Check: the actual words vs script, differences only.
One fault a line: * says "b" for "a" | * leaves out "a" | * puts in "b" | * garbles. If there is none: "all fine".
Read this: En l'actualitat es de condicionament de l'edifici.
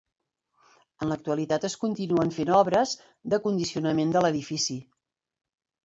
* puts in "continuen fent obres"